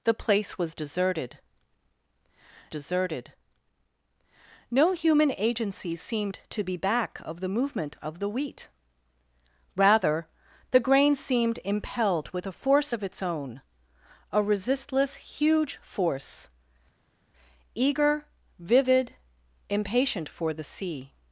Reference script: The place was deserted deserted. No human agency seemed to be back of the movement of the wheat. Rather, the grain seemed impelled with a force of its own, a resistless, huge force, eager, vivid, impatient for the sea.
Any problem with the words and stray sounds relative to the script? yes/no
no